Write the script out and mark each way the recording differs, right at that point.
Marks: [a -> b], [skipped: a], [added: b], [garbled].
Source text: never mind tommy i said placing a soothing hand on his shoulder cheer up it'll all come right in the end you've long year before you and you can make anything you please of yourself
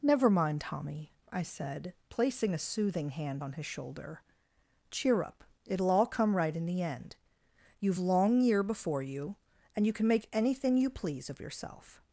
never mind tommy i said placing a soothing hand on his shoulder cheer up it'll all come right in the end you've long year before you and you can make anything you please of yourself